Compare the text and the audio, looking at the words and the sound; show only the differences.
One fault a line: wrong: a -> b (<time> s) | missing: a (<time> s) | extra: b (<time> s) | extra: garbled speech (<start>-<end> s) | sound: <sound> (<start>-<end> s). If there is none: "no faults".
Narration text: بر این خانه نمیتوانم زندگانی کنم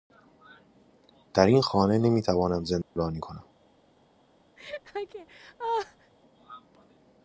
wrong: بر -> در (1.3 s)
sound: dropout (2.8-3.0 s)
sound: laugh (4.6-6.1 s)